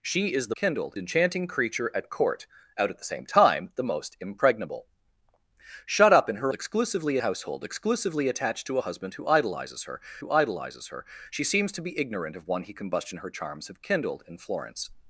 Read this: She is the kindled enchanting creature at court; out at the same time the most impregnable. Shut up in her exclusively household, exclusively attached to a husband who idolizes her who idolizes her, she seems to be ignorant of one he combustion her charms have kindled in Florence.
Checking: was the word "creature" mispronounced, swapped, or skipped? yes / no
no